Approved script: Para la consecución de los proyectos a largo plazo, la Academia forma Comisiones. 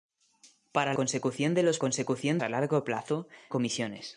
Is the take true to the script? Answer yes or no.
no